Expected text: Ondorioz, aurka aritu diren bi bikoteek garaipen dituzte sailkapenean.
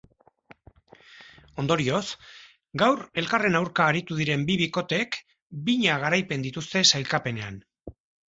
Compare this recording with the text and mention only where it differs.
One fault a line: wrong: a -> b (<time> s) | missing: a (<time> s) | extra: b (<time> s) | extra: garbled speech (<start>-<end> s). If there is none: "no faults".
extra: gaur elkarren (2.8 s)
extra: bina (5.7 s)